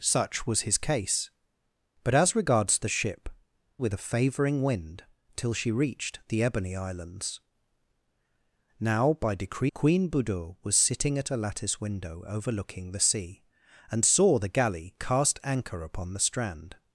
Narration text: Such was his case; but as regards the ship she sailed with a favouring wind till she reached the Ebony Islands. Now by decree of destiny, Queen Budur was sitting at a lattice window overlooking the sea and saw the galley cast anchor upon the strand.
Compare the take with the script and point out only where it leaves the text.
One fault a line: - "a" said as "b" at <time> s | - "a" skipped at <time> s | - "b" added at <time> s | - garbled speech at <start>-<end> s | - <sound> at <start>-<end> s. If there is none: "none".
- "she sailed" skipped at 3.3 s
- "of destiny" skipped at 9.7 s